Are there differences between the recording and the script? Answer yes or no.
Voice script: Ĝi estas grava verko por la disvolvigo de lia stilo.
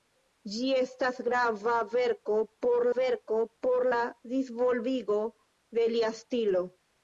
yes